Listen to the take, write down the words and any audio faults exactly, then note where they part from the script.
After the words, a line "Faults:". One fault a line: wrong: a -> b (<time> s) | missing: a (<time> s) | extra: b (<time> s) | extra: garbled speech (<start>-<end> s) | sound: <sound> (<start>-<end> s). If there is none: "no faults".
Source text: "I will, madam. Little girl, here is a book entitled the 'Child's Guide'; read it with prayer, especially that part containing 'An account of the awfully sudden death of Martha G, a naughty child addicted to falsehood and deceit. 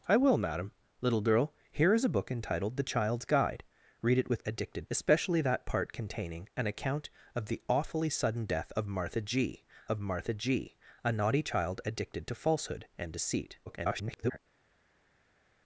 "I will, madam. Little girl, here is a book entitled the 'Child's Guide'; read it with addicted, especially that part containing 'An account of the awfully sudden death of Martha G of Martha G, a naughty child addicted to falsehood and deceit. [garbled]
Faults:
wrong: prayer -> addicted (4.4 s)
extra: of Martha G (9.9 s)
extra: garbled speech (13.7-14.4 s)